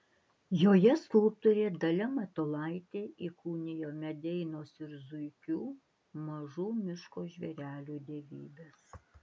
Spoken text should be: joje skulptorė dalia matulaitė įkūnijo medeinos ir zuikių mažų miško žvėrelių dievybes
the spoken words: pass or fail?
pass